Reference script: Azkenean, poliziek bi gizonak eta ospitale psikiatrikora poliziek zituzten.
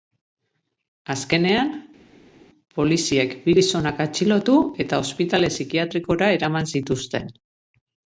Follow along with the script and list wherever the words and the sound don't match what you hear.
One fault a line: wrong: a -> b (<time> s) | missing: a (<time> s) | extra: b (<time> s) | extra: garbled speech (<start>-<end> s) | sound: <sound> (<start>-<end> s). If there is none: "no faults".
extra: atxilotu (4.1 s)
wrong: poliziek -> eraman (6.4 s)